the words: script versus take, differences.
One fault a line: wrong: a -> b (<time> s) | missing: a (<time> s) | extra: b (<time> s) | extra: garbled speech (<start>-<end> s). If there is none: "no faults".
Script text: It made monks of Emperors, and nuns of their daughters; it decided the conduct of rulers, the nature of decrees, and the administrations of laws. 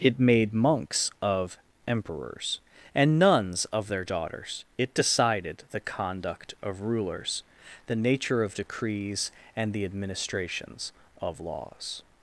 no faults